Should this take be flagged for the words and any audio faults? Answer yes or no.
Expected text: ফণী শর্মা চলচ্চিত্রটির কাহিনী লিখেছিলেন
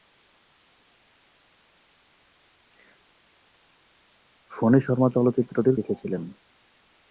yes